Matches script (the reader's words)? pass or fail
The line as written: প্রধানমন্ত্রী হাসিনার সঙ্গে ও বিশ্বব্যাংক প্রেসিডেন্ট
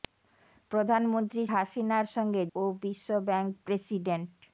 pass